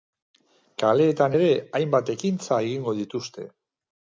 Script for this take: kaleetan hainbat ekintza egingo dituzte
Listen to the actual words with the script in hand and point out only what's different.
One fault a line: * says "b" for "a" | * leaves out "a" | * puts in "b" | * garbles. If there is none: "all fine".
* puts in "ere"